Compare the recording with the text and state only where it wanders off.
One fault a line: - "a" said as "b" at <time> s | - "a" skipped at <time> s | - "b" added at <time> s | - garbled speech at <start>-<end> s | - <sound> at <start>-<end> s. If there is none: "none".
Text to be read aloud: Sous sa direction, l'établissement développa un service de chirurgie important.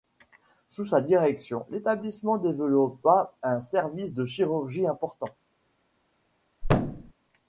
- thud at 6.6-7.1 s